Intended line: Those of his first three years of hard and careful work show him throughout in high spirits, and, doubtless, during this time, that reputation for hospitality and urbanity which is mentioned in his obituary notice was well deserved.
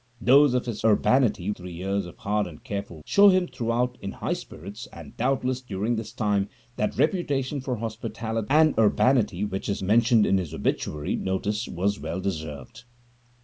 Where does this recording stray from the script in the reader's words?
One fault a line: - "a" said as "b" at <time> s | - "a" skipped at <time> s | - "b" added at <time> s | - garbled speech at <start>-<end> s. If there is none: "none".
- "first" said as "urbanity" at 0.8 s
- "work" skipped at 3.0 s